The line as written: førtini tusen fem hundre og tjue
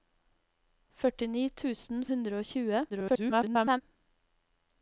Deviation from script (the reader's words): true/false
true